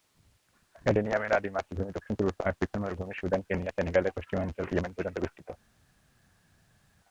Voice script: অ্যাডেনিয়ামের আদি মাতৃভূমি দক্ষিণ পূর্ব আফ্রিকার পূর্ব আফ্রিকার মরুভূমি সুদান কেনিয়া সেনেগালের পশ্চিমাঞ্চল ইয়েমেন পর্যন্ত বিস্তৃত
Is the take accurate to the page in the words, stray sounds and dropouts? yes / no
no